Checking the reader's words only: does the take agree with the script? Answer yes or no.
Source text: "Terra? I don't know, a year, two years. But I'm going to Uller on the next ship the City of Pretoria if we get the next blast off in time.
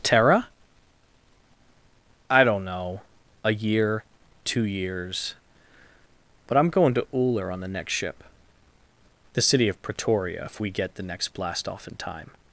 yes